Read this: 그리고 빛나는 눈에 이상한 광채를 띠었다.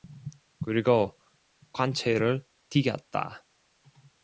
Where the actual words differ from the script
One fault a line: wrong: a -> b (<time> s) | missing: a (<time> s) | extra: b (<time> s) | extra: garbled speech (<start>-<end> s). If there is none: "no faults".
missing: 빛나는 눈에 이상한 (1.2 s)